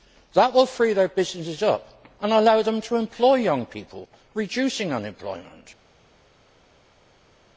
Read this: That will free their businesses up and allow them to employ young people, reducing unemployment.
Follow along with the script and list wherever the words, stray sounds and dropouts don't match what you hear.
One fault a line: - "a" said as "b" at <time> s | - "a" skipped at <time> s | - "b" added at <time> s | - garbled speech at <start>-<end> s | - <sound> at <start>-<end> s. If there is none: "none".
none